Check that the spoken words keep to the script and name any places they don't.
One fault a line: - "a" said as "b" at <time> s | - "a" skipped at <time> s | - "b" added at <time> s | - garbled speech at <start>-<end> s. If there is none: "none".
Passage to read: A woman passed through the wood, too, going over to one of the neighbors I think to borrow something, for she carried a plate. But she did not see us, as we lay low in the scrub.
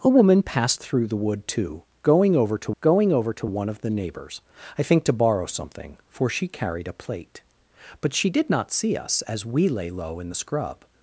- "going over to" added at 2.8 s